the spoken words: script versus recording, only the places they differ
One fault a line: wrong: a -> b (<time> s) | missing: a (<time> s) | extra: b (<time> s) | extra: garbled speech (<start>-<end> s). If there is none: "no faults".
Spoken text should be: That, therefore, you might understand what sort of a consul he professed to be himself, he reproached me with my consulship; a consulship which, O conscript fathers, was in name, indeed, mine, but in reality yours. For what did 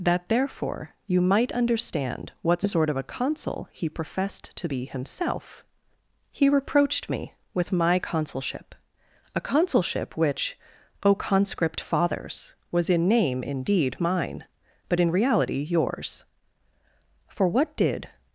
no faults